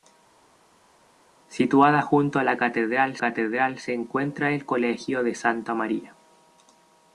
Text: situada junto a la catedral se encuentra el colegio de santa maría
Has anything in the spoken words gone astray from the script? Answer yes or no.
yes